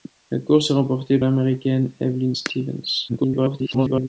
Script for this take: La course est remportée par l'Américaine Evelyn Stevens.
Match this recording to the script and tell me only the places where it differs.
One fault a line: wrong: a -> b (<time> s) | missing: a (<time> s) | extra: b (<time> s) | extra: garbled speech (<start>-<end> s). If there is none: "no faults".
missing: par (1.2 s)
extra: garbled speech (3.1-4.1 s)